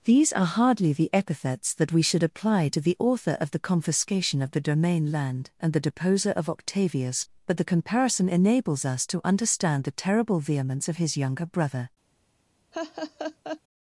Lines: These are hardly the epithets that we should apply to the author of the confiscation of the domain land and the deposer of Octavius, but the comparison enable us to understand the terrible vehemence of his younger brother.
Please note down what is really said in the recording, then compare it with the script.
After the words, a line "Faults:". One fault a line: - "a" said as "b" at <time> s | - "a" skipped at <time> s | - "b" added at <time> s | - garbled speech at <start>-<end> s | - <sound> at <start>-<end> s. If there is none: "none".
These are hardly the epithets that we should apply to the author of the confiscation of the domain land and the deposer of Octavius, but the comparison enables us to understand the terrible vehemence of his younger brother.
Faults:
- "enable" said as "enables" at 8.3 s
- laugh at 12.7-13.6 s